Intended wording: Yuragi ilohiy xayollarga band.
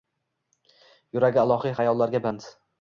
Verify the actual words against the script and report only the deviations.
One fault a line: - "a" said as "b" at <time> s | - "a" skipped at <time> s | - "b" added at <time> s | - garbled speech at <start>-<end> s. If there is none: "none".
none